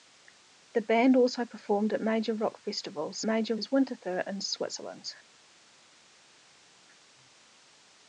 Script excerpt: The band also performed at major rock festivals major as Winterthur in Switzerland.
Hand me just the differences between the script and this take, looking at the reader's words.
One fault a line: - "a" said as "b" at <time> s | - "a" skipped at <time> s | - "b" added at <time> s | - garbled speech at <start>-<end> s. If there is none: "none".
none